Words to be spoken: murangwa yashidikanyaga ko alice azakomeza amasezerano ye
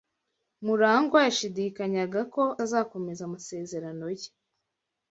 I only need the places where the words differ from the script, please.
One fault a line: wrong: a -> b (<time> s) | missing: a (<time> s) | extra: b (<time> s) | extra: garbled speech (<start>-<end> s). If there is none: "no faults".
missing: alice (2.4 s)